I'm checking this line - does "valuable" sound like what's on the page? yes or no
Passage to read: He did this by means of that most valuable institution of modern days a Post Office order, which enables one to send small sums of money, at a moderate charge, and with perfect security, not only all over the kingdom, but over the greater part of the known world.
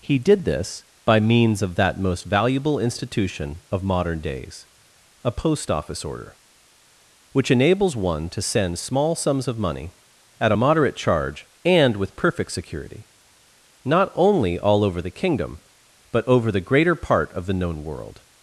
yes